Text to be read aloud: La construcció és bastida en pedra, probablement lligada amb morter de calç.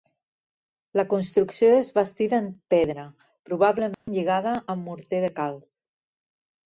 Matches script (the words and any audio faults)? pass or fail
fail